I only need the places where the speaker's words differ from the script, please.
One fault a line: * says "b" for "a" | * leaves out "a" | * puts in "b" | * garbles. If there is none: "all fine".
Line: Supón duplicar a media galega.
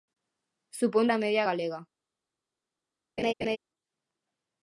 * leaves out "duplicar"